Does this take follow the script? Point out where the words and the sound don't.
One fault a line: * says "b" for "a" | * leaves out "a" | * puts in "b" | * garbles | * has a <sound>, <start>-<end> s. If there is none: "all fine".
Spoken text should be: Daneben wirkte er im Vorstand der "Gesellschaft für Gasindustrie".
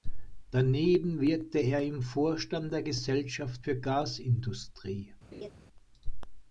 * has a laugh, 5.3-5.5 s